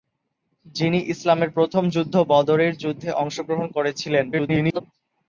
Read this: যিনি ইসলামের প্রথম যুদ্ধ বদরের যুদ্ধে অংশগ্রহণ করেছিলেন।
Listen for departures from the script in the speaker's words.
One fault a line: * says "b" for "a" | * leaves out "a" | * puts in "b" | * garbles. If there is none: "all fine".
* garbles